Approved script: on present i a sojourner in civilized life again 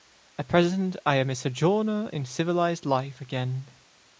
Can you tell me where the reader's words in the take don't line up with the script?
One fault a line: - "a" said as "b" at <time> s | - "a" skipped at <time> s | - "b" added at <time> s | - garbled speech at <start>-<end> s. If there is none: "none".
- "on" said as "at" at 0.3 s
- "am" added at 1.2 s